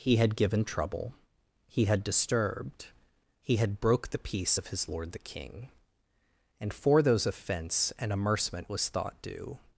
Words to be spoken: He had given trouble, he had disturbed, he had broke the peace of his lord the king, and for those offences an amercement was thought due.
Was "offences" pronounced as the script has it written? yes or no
no